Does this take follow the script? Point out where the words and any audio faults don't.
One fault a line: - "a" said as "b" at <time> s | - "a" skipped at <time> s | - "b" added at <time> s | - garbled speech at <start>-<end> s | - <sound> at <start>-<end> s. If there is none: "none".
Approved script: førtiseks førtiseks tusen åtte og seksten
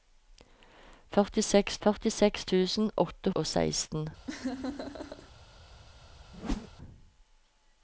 - laugh at 4.3-5.3 s
- whoosh at 6.3-6.7 s